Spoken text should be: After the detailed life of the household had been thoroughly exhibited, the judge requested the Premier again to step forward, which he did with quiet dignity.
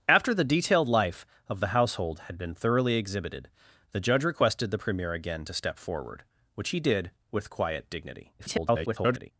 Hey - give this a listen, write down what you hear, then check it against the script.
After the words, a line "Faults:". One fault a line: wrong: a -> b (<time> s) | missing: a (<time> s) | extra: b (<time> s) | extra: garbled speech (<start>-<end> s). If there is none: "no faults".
After the detailed life of the household had been thoroughly exhibited, the judge requested the Premier again to step forward, which he did with quiet dignity. [garbled]
Faults:
extra: garbled speech (8.4-9.3 s)